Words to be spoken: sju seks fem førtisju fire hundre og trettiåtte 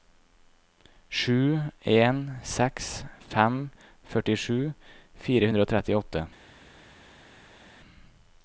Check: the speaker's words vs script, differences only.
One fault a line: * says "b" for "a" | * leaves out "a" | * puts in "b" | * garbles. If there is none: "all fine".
* puts in "en"